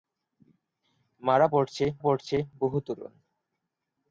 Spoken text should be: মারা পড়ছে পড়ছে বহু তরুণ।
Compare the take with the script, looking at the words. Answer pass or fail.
pass